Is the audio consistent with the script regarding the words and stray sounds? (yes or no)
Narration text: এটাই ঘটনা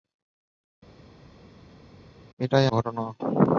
yes